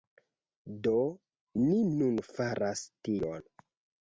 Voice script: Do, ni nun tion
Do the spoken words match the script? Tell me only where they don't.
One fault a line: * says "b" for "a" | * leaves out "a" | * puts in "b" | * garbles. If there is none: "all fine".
* puts in "faras"